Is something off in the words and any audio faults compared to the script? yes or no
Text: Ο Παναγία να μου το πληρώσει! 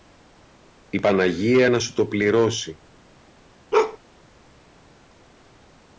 yes